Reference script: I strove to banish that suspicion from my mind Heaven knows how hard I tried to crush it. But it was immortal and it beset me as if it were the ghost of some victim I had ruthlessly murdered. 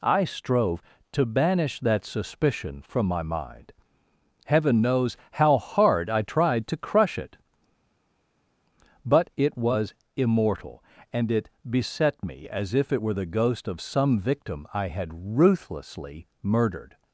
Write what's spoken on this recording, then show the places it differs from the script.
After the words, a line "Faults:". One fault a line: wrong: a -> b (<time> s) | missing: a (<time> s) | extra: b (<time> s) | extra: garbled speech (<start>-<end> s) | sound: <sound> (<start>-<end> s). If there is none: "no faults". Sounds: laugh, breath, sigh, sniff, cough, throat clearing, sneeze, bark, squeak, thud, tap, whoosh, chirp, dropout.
I strove to banish that suspicion from my mind Heaven knows how hard I tried to crush it. But it was immortal and it beset me as if it were the ghost of some victim I had ruthlessly murdered.
Faults:
no faults